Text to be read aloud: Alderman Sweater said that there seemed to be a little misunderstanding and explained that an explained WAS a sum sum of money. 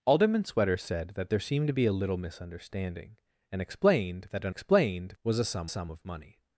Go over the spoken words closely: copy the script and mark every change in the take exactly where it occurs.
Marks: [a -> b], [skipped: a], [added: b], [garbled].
Alderman Sweater said that there seemed to be a little misunderstanding and explained that an explained WAS a sum sum of money.